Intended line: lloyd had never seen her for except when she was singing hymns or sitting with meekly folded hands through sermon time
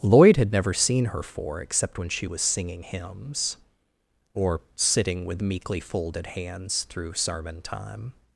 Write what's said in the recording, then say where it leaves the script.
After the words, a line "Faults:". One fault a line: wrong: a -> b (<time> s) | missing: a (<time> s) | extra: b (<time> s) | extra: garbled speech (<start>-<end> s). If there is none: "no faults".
lloyd had never seen her for except when she was singing hymns or sitting with meekly folded hands through sermon time
Faults:
no faults